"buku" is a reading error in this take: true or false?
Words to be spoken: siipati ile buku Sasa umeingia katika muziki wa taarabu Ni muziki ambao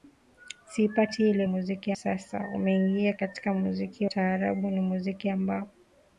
true